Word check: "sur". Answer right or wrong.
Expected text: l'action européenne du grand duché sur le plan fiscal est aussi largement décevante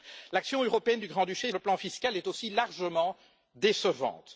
wrong